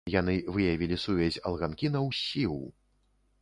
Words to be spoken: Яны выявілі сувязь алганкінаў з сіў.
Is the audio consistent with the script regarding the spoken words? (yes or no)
yes